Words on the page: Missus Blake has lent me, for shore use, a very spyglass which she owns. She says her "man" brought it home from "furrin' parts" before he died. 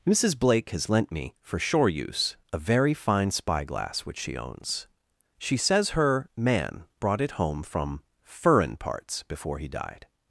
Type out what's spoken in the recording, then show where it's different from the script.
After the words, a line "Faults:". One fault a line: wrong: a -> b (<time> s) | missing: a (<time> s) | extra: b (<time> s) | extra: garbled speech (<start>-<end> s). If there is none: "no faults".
Missus Blake has lent me, for shore use, a very fine spyglass which she owns. She says her "man" brought it home from "furrin' parts" before he died.
Faults:
extra: fine (3.0 s)